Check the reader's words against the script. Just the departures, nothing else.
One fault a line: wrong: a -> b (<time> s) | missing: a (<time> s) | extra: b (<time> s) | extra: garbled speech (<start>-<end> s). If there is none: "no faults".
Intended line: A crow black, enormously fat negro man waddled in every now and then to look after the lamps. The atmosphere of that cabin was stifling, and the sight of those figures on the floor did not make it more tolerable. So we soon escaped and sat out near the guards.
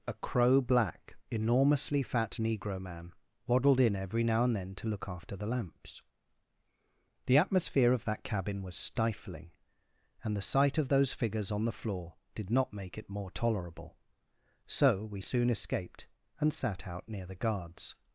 no faults